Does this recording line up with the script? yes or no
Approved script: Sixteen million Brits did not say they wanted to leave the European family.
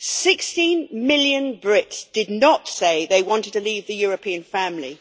yes